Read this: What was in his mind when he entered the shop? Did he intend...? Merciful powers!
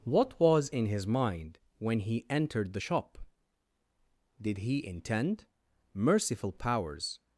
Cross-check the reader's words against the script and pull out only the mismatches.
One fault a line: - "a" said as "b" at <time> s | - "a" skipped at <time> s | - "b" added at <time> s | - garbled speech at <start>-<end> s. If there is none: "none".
none